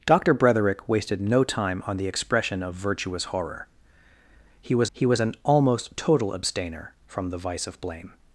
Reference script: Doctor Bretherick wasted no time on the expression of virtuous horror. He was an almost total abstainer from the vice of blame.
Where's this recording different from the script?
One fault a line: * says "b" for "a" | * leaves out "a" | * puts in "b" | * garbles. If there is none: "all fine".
* puts in "he was"